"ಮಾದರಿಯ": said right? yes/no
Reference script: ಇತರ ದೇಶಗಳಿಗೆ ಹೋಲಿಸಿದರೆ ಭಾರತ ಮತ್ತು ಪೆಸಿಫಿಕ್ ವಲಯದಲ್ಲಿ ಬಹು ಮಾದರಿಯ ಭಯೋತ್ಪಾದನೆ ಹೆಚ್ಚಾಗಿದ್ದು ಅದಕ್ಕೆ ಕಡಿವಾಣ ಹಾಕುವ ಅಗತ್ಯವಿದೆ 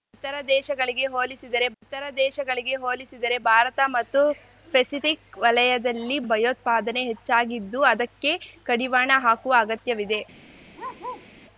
no